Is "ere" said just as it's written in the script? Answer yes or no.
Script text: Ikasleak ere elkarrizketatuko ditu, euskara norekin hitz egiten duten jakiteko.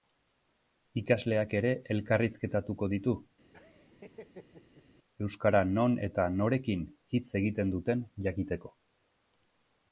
yes